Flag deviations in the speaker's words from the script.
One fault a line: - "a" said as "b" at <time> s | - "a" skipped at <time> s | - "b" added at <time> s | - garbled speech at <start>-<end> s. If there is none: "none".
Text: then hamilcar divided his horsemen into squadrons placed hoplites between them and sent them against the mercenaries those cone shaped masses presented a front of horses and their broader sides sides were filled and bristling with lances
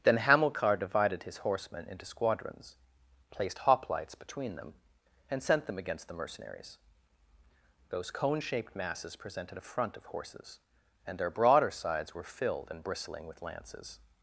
- "sides" skipped at 12.1 s